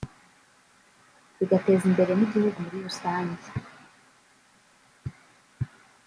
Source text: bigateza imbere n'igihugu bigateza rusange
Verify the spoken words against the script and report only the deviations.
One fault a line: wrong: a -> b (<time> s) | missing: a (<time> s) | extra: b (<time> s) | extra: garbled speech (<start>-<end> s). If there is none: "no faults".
wrong: bigateza -> muri (2.6 s)